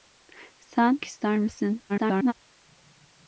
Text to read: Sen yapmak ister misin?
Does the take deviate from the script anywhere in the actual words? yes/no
yes